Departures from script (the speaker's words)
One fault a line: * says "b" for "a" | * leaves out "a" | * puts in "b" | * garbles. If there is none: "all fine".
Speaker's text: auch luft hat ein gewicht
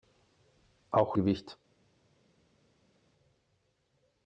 * leaves out "luft hat ein"